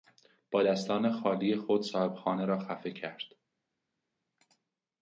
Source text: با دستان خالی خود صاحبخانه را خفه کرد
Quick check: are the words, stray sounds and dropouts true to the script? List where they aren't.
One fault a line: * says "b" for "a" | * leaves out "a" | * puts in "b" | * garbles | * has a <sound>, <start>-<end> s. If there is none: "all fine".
all fine